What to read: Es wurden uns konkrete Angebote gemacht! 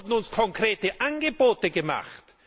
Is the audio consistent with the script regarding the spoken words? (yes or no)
yes